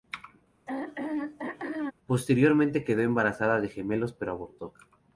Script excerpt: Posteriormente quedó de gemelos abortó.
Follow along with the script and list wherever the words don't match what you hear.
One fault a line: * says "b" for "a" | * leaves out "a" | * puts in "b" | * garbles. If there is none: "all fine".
* puts in "embarazada"
* puts in "pero"